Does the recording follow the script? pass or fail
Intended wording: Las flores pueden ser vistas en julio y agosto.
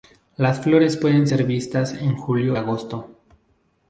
fail